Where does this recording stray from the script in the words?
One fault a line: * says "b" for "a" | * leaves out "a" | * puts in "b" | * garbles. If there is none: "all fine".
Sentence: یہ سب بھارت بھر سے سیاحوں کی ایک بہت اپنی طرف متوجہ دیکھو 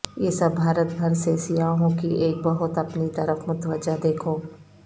all fine